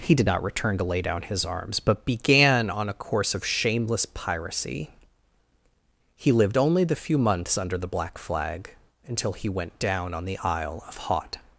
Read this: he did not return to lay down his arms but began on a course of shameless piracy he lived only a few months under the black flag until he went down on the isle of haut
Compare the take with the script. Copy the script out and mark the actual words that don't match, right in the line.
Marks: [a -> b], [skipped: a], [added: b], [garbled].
he did not return to lay down his arms but began on a course of shameless piracy he lived only [a -> the] few months under the black flag until he went down on the isle of haut